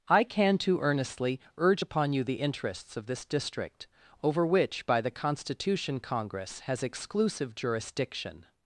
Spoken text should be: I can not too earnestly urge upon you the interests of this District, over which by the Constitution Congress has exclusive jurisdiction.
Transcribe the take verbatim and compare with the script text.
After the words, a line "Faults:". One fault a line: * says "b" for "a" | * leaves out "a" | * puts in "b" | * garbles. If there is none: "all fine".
I can too earnestly urge upon you the interests of this District, over which by the Constitution Congress has exclusive jurisdiction.
Faults:
* leaves out "not"